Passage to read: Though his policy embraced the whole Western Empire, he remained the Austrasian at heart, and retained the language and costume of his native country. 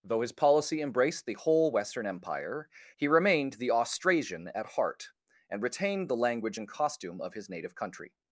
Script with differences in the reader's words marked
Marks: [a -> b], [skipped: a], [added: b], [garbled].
Though his policy embraced the whole Western Empire, he remained the Austrasian at heart, and retained the language and costume of his native country.